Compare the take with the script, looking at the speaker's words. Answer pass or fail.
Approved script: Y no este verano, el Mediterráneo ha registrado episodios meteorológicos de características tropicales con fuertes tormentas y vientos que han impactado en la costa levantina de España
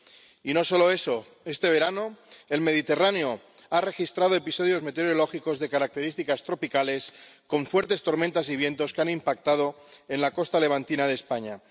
fail